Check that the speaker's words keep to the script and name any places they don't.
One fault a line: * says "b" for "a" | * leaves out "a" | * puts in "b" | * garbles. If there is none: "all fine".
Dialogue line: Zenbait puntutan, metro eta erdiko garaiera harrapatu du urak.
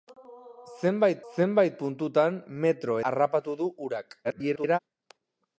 * puts in "zenbait"
* leaves out "eta erdiko garaiera"
* garbles